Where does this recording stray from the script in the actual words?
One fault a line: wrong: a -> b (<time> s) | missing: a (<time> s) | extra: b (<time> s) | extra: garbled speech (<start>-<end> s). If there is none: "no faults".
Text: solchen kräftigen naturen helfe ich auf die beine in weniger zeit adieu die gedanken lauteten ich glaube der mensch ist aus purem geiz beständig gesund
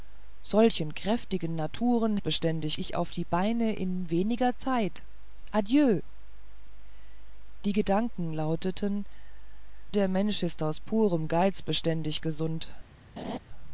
wrong: helfe -> beständig (2.2 s)
missing: ich glaube (9.1 s)